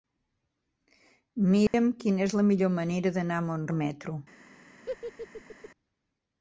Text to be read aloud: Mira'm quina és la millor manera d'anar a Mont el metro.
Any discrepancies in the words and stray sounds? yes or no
yes